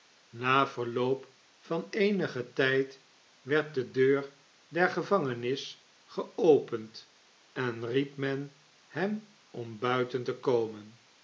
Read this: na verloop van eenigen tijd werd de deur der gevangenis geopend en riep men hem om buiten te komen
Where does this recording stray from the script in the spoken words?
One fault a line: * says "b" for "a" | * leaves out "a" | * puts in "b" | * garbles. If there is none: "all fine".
all fine